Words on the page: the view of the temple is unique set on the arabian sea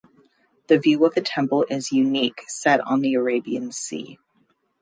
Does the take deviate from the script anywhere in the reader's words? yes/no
no